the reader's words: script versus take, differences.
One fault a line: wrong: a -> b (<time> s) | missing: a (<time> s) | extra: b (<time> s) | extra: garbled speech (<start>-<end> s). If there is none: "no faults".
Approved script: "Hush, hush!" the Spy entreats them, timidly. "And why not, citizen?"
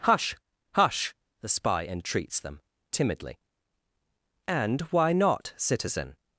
no faults